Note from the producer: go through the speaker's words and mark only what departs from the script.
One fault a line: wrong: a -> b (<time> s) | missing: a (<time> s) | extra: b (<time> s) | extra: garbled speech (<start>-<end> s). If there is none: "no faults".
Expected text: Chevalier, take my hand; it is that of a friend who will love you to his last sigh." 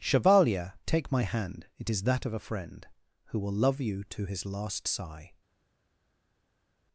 no faults